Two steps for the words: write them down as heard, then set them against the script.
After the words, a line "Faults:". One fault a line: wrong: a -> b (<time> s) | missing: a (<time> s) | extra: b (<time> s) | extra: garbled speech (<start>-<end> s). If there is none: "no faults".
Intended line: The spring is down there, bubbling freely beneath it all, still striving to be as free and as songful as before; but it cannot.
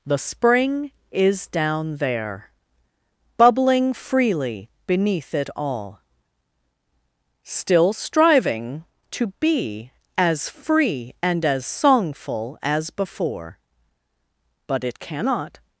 The spring is down there, bubbling freely beneath it all, still striving to be as free and as songful as before; but it cannot.
Faults:
no faults